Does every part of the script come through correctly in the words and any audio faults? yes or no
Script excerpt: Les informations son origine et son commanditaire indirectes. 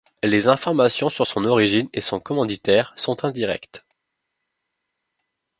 no